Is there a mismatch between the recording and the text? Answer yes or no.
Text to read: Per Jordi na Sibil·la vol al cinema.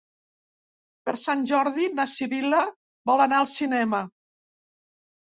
yes